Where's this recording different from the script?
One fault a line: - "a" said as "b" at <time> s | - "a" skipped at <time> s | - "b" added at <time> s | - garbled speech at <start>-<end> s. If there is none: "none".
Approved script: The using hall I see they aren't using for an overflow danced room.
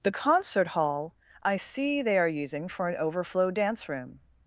- "using" said as "concert" at 0.1 s
- "aren't" said as "are" at 2.2 s
- "danced" said as "dance" at 3.5 s